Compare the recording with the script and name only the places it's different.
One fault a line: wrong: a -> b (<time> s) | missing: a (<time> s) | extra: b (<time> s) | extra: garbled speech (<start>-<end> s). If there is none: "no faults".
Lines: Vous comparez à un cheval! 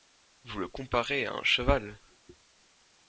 extra: le (0.6 s)